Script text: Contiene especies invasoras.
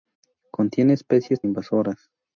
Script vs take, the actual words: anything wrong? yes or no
no